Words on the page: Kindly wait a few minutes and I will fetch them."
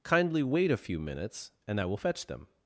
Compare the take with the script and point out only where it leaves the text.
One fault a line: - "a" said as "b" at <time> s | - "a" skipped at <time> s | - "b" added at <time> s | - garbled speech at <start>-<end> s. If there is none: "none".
none